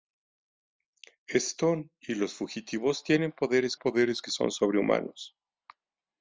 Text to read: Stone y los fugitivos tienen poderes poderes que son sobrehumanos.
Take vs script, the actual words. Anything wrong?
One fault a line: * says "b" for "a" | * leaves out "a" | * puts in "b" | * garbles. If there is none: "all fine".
all fine